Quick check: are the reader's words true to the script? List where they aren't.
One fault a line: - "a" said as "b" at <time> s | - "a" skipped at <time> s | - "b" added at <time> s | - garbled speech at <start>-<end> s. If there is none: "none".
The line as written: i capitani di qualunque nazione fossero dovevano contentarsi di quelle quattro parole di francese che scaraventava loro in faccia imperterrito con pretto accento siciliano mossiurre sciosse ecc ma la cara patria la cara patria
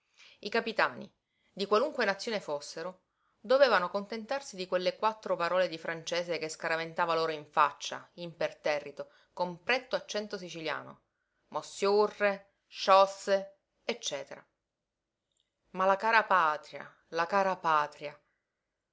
none